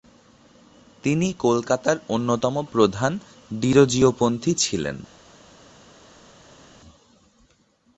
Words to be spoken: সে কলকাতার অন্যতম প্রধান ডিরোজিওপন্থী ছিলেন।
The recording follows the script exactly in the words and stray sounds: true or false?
false